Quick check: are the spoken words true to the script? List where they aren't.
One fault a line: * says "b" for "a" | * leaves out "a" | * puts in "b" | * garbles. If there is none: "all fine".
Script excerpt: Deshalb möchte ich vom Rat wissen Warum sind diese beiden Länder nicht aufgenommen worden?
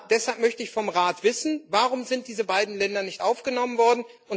all fine